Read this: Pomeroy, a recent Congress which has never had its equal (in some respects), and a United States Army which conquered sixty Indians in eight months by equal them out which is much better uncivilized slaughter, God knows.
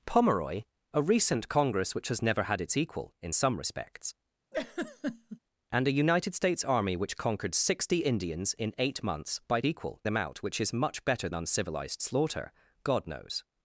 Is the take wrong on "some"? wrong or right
right